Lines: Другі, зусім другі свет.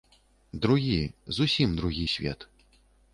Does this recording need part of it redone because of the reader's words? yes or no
no